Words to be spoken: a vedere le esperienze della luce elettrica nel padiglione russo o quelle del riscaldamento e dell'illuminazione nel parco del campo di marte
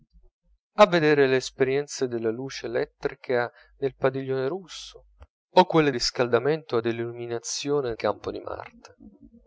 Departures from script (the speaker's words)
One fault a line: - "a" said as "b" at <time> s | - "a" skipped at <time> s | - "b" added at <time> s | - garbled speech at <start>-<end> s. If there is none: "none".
- "del" skipped at 5.9 s
- "nel parco del" skipped at 7.9 s